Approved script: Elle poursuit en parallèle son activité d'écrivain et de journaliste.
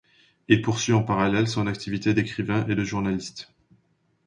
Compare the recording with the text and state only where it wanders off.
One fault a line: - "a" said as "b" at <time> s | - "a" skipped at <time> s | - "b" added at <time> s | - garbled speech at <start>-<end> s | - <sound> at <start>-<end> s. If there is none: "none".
- "Elle" said as "Il" at 0.5 s